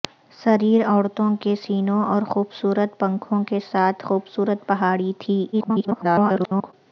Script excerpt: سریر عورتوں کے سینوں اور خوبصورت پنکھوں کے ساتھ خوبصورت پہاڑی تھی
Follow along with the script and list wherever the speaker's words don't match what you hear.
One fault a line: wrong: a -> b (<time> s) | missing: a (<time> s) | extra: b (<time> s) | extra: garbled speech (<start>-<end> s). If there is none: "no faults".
extra: garbled speech (5.5-6.7 s)